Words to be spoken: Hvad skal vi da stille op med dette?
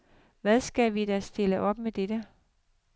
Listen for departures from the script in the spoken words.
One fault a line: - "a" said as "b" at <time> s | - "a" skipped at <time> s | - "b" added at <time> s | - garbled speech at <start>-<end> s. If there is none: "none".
none